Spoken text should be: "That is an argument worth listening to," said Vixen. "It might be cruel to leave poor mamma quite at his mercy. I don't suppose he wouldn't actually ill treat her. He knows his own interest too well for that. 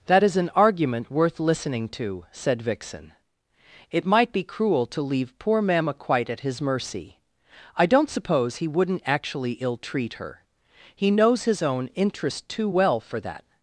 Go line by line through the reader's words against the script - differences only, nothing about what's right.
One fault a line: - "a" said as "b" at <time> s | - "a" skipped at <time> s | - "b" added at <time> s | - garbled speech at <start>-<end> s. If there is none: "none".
none